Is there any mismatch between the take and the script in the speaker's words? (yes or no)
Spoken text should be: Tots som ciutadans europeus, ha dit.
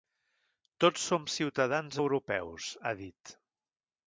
no